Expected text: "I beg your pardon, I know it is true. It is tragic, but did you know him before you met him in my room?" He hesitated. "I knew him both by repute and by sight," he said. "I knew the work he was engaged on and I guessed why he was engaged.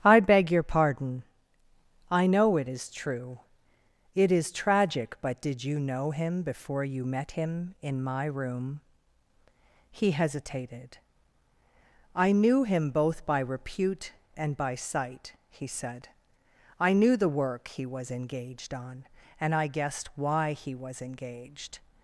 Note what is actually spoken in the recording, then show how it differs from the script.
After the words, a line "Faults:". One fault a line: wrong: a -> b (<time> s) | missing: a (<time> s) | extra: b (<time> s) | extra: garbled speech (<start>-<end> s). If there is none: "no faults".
"I beg your pardon, I know it is true. It is tragic, but did you know him before you met him in my room?" He hesitated. "I knew him both by repute and by sight," he said. "I knew the work he was engaged on and I guessed why he was engaged.
Faults:
no faults